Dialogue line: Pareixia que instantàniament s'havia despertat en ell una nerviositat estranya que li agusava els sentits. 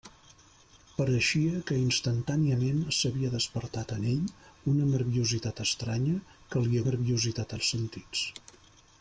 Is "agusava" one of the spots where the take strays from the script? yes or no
yes